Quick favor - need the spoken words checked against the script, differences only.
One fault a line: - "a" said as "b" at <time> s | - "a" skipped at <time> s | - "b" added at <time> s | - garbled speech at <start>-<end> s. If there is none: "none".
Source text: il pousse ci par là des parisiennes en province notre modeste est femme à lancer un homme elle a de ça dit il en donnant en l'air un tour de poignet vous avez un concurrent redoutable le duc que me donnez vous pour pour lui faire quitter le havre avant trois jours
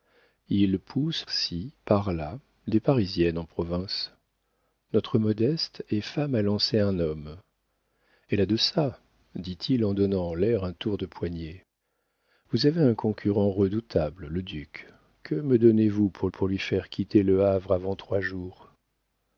none